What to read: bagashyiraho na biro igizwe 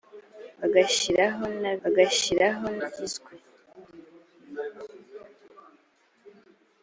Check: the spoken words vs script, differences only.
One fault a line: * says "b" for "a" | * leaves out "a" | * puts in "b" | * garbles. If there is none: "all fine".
* says "bagashyiraho" for "biro"